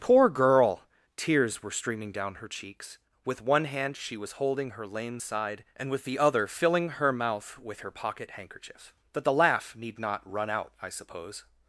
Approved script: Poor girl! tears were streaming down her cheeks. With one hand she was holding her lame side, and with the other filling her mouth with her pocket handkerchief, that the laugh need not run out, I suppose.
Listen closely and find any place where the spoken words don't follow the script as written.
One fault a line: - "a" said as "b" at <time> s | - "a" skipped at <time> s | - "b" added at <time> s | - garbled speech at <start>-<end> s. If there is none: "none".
none